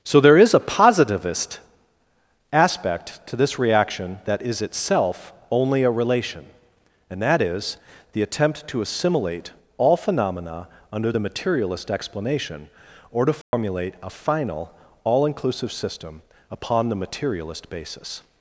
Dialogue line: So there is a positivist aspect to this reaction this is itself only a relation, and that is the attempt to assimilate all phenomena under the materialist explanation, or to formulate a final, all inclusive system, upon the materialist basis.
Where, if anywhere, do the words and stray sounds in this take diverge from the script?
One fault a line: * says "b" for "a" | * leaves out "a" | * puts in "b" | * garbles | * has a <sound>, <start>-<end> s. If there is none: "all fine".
* says "that" for "this"
* has a dropout, 13.4-13.5 s